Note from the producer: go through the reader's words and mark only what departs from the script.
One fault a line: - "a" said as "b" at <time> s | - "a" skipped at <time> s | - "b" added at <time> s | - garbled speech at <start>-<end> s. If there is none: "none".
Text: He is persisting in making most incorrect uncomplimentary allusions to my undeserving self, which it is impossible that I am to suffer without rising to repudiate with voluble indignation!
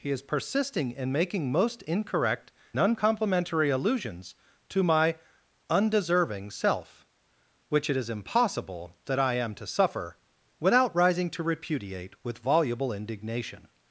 none